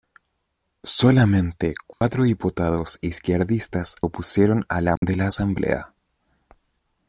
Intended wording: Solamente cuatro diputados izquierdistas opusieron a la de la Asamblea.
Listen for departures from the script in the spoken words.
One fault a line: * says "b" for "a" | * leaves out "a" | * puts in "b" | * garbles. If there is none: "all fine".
all fine